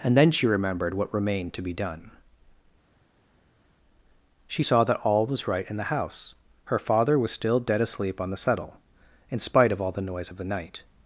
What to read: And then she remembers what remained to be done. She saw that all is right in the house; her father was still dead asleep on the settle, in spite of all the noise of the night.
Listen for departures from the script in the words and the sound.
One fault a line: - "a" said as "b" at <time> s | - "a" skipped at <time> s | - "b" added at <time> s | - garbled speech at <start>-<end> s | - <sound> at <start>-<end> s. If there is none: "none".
- "remembers" said as "remembered" at 0.5 s
- "is" said as "was" at 5.3 s